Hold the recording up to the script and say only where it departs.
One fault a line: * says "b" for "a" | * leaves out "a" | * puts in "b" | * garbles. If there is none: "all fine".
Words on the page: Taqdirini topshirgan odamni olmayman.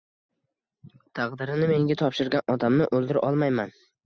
* puts in "menga"
* puts in "o'ldira"